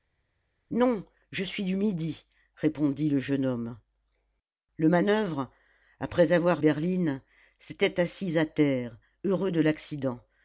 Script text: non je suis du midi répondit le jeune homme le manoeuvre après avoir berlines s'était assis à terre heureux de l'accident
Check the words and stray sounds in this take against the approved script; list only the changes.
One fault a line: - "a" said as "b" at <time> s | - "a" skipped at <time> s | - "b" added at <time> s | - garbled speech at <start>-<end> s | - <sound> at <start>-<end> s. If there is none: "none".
none